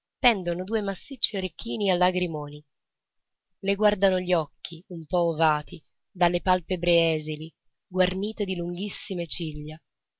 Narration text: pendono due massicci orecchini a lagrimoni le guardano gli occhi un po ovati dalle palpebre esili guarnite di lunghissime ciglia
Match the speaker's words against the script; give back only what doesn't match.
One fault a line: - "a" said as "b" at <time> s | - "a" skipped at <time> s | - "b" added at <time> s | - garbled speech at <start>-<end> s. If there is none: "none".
none